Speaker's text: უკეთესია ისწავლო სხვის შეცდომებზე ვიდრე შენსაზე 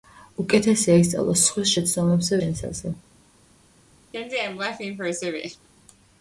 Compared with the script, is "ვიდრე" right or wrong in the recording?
wrong